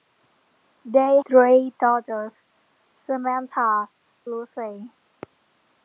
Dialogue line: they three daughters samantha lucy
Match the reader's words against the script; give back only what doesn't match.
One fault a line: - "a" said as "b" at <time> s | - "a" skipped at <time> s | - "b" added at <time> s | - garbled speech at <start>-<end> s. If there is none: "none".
none